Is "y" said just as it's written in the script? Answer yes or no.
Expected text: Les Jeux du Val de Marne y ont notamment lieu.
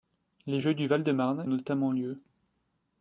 no